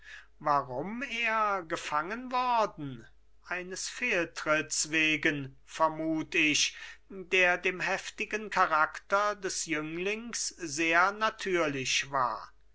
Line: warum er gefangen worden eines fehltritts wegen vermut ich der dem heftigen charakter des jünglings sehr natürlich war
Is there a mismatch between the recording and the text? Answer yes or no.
no